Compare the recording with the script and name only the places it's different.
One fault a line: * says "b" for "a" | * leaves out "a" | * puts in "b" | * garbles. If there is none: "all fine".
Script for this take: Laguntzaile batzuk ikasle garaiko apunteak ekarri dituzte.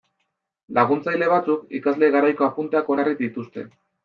all fine